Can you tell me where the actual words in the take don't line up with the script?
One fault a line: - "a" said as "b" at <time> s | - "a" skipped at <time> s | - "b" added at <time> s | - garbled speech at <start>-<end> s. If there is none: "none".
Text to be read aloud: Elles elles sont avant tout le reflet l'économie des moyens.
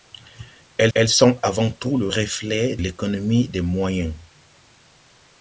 none